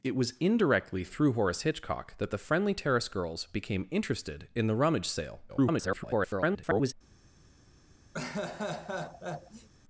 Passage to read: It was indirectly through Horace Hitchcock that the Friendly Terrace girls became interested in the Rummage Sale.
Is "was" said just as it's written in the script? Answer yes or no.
yes